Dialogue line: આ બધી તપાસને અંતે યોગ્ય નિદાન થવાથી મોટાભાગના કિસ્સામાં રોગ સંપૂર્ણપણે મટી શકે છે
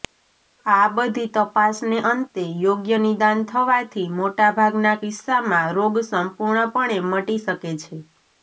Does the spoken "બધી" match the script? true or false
true